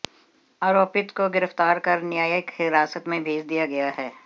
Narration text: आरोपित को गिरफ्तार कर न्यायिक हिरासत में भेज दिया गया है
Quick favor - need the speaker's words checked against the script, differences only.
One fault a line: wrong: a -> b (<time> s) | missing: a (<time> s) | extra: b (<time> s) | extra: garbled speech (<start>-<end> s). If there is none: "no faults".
no faults